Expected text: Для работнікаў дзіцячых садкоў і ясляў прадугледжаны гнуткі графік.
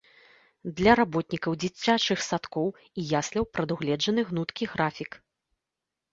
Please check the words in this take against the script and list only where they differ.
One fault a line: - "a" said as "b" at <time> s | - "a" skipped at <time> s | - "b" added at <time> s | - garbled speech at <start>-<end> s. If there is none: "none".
none